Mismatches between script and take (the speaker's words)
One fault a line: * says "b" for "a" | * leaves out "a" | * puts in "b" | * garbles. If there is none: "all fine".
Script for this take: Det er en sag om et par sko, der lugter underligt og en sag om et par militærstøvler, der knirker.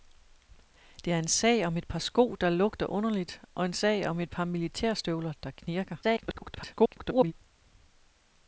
* garbles